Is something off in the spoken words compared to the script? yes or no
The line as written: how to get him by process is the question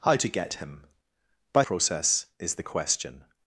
no